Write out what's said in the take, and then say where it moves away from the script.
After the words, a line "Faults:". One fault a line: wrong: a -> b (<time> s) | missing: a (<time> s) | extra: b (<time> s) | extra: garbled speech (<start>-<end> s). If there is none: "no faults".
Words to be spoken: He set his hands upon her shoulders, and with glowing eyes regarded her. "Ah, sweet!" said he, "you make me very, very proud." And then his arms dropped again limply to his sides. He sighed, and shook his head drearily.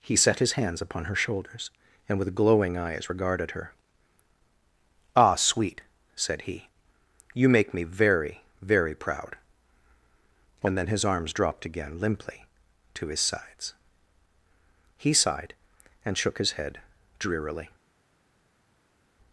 He set his hands upon her shoulders, and with glowing eyes regarded her. "Ah, sweet!" said he, "you make me very, very proud." And then his arms dropped again limply to his sides. He sighed, and shook his head drearily.
Faults:
no faults